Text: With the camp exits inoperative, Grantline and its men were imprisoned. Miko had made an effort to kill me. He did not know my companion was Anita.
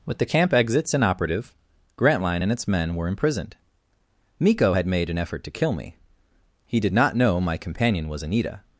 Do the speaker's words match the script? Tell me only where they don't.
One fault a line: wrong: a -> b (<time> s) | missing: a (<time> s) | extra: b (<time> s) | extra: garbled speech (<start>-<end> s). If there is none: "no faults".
no faults